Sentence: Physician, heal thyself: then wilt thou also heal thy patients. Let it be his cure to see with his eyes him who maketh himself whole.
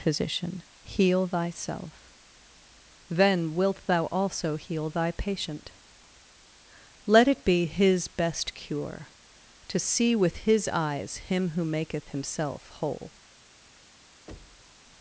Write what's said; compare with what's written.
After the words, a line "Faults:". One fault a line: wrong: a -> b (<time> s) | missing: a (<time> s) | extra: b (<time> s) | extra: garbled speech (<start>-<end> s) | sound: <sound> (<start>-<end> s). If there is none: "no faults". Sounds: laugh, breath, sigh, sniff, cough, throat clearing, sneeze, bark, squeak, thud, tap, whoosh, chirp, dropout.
Physician, heal thyself: then wilt thou also heal thy patient. Let it be his best cure to see with his eyes him who maketh himself whole.
Faults:
wrong: patients -> patient (5.1 s)
extra: best (8.1 s)
sound: thud (14.3-14.8 s)